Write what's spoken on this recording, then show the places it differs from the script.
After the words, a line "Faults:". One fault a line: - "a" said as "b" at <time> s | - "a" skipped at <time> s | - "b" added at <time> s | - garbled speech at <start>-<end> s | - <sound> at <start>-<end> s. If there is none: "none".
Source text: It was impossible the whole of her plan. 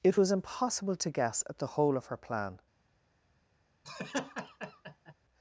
It was impossible to guess at the whole of her plan.
Faults:
- "to guess at" added at 0.9 s
- laugh at 3.8-5.1 s